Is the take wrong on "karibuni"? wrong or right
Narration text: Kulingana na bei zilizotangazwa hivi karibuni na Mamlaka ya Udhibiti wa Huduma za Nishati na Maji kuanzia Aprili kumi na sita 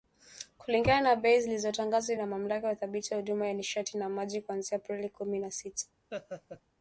wrong